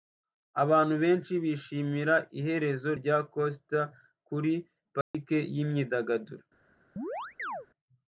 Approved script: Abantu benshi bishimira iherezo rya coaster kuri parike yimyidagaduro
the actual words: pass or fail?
pass